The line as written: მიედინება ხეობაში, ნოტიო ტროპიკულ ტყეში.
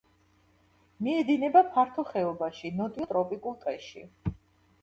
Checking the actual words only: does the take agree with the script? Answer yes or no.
no